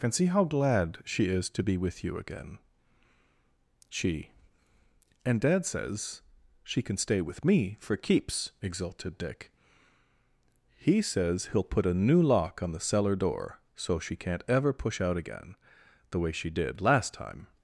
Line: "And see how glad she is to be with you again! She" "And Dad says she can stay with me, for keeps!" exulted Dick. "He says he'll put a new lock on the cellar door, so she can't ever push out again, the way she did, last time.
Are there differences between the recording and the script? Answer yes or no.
no